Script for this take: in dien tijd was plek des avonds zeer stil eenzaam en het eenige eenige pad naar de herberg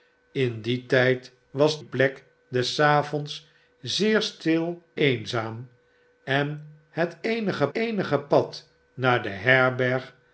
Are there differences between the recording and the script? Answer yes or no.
no